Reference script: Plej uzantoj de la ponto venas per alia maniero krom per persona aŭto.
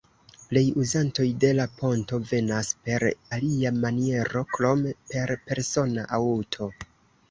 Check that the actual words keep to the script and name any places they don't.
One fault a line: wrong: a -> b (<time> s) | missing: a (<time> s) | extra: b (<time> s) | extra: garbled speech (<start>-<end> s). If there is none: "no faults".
no faults